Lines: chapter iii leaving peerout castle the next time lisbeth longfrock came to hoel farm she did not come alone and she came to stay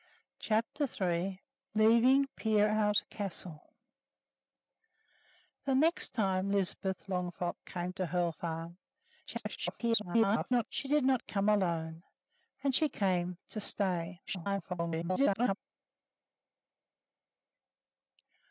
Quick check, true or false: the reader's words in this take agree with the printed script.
false